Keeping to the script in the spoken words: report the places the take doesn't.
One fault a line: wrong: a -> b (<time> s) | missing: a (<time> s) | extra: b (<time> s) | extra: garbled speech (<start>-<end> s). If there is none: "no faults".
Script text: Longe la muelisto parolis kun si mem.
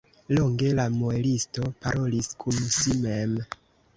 no faults